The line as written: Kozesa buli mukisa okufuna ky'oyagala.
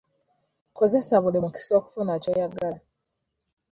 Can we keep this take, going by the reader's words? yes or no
yes